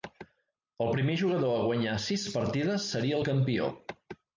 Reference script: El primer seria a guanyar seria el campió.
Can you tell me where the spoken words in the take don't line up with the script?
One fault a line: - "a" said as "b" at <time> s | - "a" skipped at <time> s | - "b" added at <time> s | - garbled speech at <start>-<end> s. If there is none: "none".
- "seria" said as "jugador" at 1.2 s
- "sis partides" added at 2.1 s